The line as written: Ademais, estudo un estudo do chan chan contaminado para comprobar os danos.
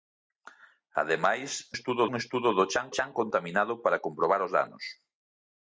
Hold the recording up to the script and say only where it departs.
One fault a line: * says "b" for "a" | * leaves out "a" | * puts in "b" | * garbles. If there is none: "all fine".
all fine